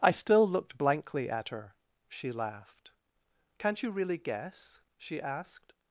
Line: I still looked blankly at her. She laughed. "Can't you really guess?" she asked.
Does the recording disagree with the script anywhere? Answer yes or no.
no